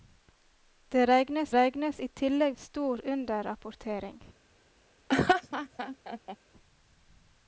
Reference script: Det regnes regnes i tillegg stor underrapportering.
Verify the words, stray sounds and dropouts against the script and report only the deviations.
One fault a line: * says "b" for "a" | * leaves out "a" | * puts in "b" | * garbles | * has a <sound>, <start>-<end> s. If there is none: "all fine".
* has a laugh, 5.1-6.4 s